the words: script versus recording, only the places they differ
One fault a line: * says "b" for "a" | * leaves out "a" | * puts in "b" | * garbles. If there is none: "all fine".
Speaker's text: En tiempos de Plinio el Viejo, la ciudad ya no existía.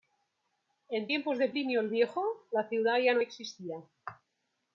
all fine